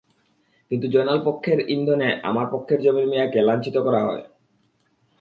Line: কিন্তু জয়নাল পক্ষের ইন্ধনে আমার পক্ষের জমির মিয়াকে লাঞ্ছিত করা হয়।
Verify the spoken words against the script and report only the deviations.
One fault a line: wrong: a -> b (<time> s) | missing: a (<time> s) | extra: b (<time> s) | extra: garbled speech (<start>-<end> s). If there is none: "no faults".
no faults